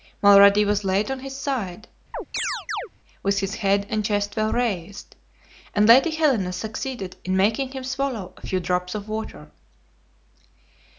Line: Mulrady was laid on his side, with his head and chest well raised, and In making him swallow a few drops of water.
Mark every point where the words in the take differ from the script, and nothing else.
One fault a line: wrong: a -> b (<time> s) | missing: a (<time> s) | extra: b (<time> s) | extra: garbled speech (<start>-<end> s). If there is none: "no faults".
extra: Lady Helena succeeded (5.9 s)